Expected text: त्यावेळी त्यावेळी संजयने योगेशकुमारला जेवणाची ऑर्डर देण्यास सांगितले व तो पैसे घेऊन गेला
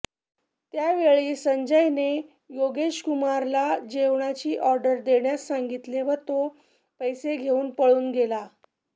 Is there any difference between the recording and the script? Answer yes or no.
yes